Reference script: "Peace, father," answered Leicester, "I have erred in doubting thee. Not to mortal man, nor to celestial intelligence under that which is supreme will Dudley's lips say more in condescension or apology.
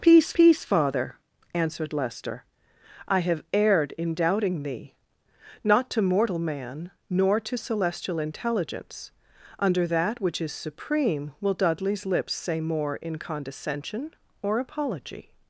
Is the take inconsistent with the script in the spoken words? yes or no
yes